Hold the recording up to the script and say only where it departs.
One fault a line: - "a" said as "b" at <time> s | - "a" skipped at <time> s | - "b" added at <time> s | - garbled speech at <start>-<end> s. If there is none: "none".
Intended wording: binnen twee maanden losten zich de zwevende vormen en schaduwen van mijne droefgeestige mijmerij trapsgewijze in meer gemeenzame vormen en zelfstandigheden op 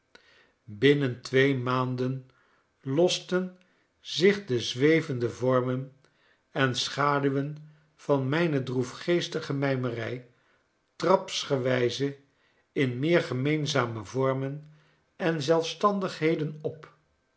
none